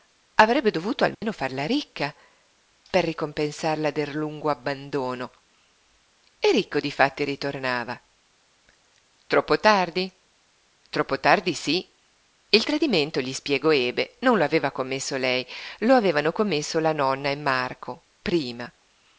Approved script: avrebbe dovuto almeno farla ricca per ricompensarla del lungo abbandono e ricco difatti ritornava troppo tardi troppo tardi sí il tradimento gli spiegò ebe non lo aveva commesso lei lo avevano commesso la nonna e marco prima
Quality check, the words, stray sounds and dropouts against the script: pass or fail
fail